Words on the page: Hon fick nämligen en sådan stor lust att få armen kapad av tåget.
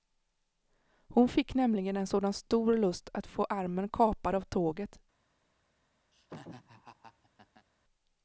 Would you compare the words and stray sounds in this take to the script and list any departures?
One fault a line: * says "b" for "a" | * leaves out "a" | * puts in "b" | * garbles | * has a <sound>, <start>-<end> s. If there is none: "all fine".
* has a laugh, 6.1-7.7 s